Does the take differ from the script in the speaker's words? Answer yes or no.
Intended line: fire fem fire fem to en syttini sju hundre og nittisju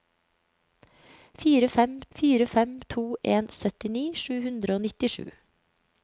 no